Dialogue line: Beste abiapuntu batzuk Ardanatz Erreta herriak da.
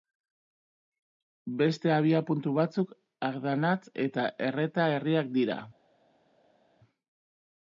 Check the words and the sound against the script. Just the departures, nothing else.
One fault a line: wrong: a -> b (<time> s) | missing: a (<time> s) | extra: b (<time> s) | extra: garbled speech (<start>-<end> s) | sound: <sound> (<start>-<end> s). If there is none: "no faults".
extra: eta (4.1 s)
wrong: da -> dira (5.4 s)